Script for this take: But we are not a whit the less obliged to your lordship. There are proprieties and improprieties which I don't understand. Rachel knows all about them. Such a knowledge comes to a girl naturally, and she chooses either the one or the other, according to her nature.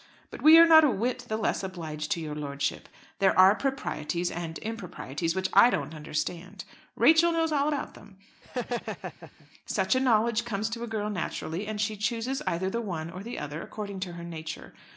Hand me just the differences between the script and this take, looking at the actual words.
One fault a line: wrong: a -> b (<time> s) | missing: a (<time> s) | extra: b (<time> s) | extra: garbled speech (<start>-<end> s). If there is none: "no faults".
no faults